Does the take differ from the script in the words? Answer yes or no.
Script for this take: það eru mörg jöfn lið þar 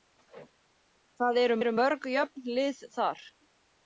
yes